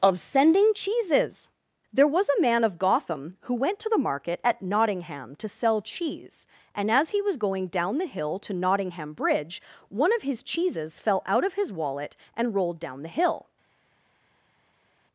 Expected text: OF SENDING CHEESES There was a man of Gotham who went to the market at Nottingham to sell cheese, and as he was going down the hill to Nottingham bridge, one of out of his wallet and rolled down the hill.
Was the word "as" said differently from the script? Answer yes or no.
no